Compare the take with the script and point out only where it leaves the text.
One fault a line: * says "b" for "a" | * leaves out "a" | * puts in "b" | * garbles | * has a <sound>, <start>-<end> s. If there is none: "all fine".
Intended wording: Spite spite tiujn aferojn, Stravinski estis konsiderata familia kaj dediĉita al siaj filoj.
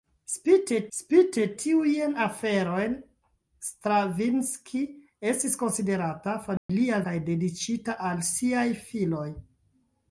* has a dropout, 6.6-6.7 s